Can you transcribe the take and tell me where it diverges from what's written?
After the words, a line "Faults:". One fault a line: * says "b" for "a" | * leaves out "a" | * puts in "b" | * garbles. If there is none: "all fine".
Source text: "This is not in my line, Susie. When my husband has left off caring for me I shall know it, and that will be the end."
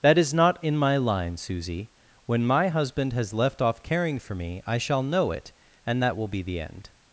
"That is not in my line, Susie. When my husband has left off caring for me I shall know it, and that will be the end."
Faults:
* says "That" for "This"